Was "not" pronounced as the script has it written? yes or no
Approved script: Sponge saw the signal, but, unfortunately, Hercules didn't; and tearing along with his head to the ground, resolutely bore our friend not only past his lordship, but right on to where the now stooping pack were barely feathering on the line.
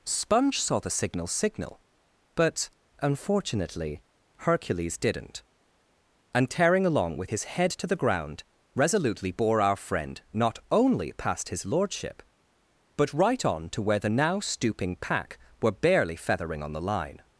yes